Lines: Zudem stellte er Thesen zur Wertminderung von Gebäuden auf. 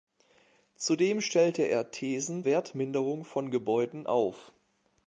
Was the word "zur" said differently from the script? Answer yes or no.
yes